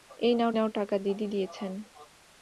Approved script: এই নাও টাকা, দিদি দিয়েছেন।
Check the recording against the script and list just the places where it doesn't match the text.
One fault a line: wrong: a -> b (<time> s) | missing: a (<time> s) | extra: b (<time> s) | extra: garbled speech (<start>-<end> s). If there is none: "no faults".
extra: নাও (0.5 s)